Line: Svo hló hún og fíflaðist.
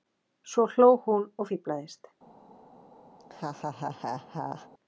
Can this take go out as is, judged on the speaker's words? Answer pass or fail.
pass